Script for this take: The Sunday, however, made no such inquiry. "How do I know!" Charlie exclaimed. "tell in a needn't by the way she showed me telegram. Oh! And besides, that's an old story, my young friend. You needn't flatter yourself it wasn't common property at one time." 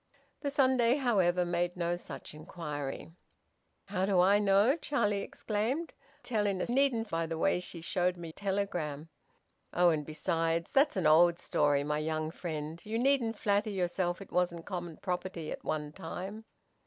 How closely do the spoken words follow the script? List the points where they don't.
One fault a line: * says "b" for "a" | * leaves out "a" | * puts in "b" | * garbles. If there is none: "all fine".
all fine